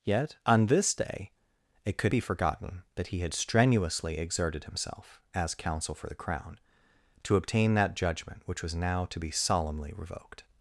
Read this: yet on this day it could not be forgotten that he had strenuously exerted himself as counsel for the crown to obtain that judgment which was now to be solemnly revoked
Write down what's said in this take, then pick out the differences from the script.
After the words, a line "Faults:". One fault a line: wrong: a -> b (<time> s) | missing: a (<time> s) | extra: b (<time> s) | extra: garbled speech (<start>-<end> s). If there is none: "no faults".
yet on this day it could be forgotten that he had strenuously exerted himself as counsel for the crown to obtain that judgment which was now to be solemnly revoked
Faults:
missing: not (2.1 s)